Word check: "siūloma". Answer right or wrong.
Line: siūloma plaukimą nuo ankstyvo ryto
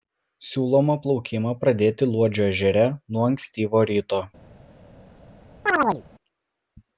right